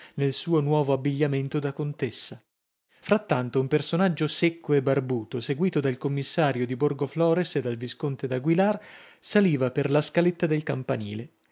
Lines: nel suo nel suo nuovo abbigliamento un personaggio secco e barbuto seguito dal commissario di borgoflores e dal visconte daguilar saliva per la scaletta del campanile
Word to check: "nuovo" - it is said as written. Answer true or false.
false